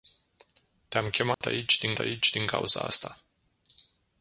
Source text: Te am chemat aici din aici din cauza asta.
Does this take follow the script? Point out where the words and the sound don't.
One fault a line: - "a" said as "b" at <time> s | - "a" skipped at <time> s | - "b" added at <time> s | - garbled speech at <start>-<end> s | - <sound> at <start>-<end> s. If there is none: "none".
- dropout at 1.3-1.4 s